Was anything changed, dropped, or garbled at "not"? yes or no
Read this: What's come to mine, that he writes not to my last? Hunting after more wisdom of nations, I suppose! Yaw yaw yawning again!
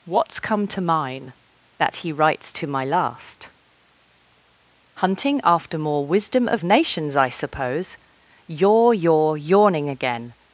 yes